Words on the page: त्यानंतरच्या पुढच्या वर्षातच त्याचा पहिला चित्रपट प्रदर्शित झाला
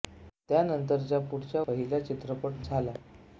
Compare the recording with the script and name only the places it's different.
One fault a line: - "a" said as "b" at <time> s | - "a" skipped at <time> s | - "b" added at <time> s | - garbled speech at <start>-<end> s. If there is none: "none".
- "वर्षातच त्याचा" skipped at 1.6 s
- "प्रदर्शित" skipped at 2.6 s